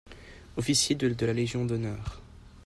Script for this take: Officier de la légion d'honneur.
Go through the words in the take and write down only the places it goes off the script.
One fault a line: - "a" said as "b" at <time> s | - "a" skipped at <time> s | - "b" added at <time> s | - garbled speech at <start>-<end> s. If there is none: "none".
none